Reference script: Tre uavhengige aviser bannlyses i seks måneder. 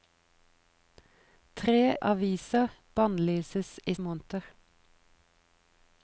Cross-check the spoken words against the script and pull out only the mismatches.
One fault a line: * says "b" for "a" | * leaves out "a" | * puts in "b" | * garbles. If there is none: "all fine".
* leaves out "uavhengige"
* leaves out "seks"